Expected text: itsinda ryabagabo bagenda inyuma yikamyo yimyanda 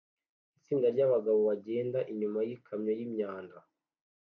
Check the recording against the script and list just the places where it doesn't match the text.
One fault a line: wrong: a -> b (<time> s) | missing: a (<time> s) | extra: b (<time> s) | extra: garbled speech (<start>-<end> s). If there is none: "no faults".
no faults